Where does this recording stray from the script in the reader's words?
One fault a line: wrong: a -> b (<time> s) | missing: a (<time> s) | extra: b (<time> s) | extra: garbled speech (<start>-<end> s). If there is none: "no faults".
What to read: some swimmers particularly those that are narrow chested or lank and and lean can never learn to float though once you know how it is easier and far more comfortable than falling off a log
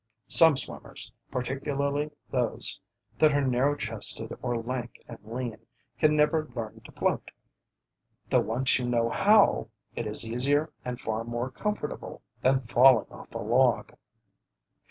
missing: and (5.2 s)